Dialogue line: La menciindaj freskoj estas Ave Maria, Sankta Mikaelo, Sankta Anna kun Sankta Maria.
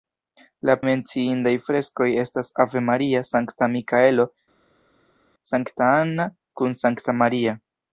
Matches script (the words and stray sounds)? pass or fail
pass